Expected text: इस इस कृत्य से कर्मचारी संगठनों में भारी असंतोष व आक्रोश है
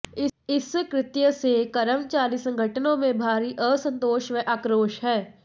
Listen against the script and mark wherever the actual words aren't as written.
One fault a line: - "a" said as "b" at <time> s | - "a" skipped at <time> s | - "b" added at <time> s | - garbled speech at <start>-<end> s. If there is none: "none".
- "इस" skipped at 0.7 s